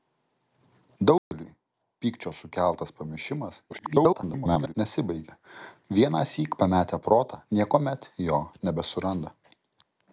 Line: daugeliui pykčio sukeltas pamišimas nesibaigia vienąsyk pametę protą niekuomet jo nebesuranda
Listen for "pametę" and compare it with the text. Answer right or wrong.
right